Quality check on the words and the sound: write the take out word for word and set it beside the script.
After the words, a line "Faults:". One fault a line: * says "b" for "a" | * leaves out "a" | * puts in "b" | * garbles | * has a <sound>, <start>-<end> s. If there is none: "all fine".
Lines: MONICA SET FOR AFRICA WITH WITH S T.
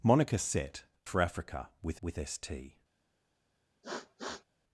MONICA SET FOR AFRICA WITH WITH S T.
Faults:
* has a sniff, 3.8-4.4 s